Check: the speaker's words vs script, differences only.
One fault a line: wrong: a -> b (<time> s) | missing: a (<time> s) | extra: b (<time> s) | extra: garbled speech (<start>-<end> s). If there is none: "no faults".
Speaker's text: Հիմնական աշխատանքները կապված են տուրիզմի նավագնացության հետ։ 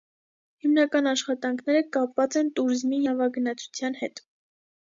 no faults